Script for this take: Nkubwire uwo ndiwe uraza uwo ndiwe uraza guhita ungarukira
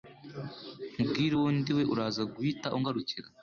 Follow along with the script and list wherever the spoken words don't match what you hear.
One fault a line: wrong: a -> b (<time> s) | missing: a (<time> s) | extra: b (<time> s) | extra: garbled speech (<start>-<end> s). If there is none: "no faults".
missing: uwo ndiwe uraza (2.2 s)